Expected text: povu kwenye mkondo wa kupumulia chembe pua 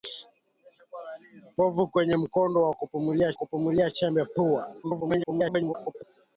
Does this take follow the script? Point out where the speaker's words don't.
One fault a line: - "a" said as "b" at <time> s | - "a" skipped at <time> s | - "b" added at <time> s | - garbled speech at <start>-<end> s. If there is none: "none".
- "kupumulia" added at 3.3 s
- garbled speech at 4.8-6.0 s